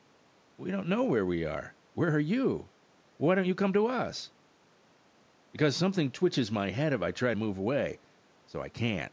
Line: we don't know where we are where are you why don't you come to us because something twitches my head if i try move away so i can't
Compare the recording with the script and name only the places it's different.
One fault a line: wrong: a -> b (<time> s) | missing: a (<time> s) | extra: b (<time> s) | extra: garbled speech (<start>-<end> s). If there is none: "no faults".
no faults